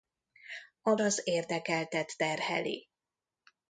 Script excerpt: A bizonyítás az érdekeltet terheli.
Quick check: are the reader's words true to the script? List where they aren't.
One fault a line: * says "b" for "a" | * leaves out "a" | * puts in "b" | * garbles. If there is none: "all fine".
* leaves out "bizonyítás"